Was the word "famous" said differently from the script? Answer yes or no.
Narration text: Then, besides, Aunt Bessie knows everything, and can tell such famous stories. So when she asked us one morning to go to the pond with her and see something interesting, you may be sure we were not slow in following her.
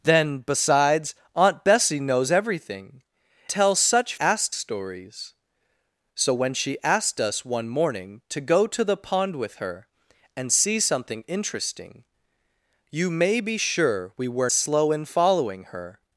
yes